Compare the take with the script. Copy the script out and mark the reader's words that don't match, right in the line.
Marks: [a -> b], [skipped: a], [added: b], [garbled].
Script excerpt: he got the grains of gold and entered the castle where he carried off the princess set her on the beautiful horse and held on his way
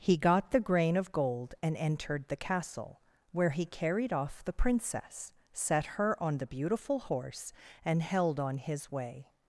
he got the [grains -> grain] of gold and entered the castle where he carried off the princess set her on the beautiful horse and held on his way